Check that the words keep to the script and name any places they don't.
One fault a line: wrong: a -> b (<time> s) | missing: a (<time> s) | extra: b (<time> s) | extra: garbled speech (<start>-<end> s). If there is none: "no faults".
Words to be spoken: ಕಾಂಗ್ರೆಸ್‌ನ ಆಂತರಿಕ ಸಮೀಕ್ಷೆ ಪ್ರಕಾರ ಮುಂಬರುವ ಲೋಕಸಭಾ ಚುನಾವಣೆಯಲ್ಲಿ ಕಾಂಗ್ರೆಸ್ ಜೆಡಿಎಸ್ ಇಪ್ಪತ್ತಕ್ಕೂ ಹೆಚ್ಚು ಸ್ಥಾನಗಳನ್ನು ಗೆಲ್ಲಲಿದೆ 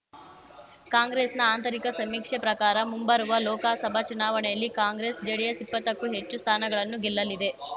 no faults